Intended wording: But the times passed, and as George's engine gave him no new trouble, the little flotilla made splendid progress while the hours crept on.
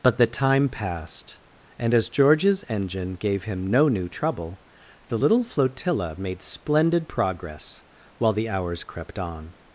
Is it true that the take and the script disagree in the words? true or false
true